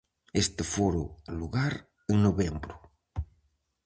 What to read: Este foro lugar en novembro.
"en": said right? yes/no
yes